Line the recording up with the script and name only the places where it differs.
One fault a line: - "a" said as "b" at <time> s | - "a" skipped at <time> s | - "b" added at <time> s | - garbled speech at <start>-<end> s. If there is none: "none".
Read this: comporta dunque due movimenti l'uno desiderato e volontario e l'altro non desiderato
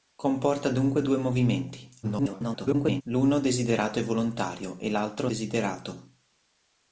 - garbled speech at 2.0-3.0 s
- "non" skipped at 5.3 s